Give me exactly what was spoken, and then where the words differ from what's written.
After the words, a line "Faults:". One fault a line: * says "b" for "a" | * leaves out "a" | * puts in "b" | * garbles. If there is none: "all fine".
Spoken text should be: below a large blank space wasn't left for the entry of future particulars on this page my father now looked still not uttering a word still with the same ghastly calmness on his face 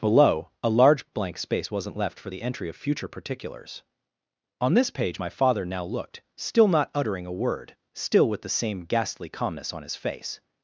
below a large blank space wasn't left for the entry of future particulars on this page my father now looked still not uttering a word still with the same ghastly calmness on his face
Faults:
all fine